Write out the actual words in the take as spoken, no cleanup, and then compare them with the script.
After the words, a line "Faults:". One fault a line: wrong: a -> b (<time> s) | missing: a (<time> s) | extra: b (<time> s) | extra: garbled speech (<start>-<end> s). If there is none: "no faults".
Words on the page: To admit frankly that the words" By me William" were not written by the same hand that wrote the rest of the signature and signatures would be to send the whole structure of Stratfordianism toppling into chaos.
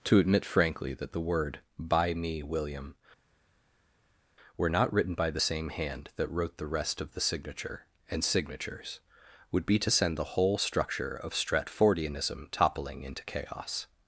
To admit frankly that the word" By me William" were not written by the same hand that wrote the rest of the signature and signatures would be to send the whole structure of Stratfordianism toppling into chaos.
Faults:
wrong: words -> word (1.2 s)